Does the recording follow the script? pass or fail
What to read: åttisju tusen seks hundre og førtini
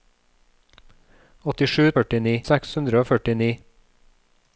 fail